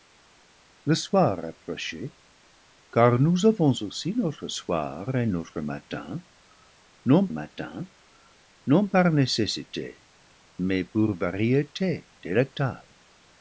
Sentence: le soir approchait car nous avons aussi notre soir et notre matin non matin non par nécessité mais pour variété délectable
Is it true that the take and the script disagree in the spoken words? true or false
false